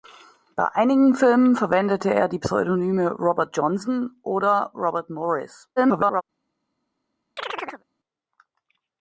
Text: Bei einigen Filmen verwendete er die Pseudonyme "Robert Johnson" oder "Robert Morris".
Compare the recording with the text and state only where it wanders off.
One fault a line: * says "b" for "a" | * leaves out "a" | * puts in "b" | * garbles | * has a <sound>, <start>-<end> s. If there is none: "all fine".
* garbles
* has a chirp, 7.4-7.8 s